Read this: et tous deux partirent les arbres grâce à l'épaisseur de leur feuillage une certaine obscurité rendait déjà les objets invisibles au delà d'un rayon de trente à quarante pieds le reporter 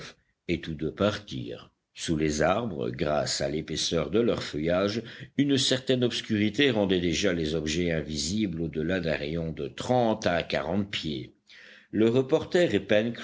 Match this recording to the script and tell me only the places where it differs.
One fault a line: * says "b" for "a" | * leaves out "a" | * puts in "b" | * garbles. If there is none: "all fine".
* puts in "sous"